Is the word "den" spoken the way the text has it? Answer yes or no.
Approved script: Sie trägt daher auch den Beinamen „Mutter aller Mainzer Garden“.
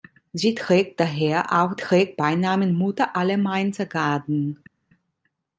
no